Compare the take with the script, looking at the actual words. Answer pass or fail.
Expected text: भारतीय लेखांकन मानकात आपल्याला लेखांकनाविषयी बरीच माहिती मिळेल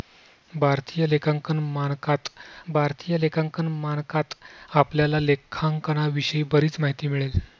fail